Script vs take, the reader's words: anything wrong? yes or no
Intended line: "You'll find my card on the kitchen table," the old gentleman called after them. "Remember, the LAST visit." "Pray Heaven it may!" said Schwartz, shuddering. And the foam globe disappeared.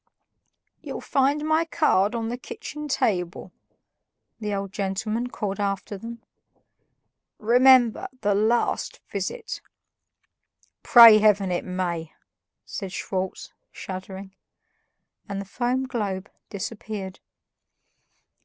no